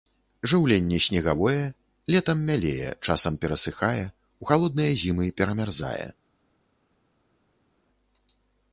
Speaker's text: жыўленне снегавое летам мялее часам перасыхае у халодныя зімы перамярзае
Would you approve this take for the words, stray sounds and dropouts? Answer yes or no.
yes